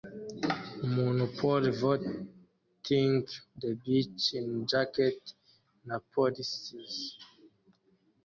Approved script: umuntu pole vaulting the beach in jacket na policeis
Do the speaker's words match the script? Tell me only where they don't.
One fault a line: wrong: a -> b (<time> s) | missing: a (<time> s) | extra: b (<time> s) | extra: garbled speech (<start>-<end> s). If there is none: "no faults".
no faults